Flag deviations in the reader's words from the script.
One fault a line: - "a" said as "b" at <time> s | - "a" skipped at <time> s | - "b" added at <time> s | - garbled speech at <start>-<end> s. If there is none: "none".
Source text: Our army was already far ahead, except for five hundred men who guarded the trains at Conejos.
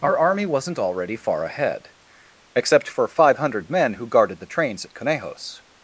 - "was" said as "wasn't" at 0.5 s